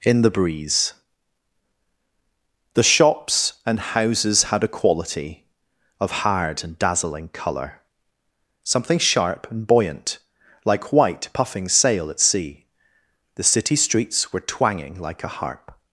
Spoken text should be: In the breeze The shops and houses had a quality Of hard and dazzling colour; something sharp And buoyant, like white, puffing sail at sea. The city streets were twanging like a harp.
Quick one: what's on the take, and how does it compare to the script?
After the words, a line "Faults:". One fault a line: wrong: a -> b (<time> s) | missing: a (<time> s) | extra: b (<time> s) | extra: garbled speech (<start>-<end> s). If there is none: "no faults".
In the breeze The shops and houses had a quality Of hard and dazzling colour; something sharp And buoyant, like white, puffing sail at sea. The city streets were twanging like a harp.
Faults:
no faults